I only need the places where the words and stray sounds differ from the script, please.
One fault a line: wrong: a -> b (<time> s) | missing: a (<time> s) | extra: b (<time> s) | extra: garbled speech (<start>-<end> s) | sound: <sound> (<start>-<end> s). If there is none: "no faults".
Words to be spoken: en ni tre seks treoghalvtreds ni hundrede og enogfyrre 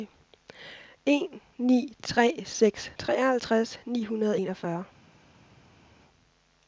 no faults